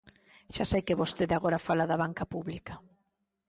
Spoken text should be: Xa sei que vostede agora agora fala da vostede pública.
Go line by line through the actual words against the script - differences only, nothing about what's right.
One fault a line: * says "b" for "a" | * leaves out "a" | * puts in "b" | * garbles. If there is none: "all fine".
* leaves out "agora"
* says "banca" for "vostede"